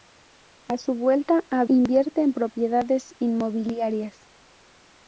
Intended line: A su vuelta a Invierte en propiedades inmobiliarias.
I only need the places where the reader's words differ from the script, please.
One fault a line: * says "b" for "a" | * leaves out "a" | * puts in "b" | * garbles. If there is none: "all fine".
all fine